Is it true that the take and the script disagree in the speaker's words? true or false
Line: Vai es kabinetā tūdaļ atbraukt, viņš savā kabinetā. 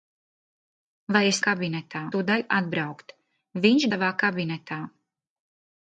false